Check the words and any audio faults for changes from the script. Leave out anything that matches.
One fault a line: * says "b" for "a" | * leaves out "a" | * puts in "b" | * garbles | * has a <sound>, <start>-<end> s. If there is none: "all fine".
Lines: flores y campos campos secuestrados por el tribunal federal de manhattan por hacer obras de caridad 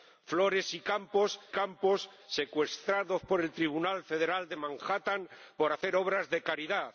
all fine